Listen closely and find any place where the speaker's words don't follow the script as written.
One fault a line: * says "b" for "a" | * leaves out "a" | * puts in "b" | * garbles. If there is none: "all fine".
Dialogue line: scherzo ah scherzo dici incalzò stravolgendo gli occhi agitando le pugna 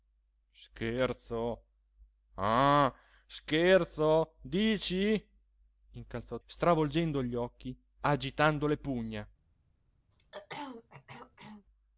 all fine